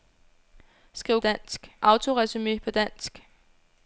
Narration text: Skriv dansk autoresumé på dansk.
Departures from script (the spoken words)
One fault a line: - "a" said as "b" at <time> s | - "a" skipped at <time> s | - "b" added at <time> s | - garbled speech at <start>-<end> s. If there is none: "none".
none